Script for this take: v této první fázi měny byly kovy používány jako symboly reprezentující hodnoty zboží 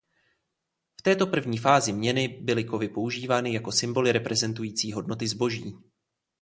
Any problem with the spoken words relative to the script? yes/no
no